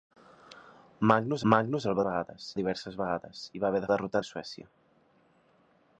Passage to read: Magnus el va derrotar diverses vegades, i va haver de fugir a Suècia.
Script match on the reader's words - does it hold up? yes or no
no